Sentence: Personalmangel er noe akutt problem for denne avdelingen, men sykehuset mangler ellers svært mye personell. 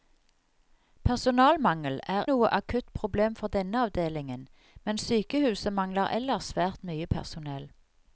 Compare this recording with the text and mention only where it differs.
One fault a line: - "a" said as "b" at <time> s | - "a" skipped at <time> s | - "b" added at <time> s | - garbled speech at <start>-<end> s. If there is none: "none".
none